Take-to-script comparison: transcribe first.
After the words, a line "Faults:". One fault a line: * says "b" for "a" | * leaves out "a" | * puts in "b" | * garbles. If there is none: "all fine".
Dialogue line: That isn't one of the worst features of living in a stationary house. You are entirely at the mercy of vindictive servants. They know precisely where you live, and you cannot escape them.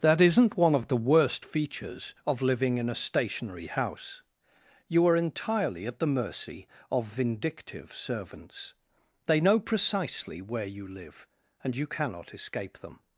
That isn't one of the worst features of living in a stationary house. You are entirely at the mercy of vindictive servants. They know precisely where you live, and you cannot escape them.
Faults:
all fine